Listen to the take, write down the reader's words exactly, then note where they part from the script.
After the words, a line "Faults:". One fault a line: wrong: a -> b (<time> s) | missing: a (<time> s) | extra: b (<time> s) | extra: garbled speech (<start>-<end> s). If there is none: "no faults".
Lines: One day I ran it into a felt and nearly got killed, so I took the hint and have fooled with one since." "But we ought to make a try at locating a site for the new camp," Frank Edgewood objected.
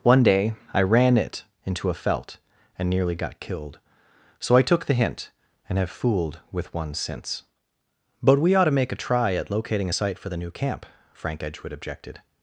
One day I ran it into a felt and nearly got killed, so I took the hint and have fooled with one since." "But we ought to make a try at locating a site for the new camp," Frank Edgewood objected.
Faults:
no faults